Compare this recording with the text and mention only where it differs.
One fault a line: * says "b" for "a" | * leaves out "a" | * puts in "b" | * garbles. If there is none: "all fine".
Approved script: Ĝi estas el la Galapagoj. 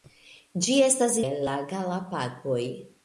all fine